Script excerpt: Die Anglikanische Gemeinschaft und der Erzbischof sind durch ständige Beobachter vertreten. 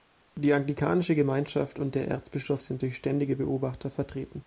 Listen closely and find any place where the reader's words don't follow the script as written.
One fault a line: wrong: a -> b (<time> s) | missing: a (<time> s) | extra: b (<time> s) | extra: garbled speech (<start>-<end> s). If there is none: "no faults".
no faults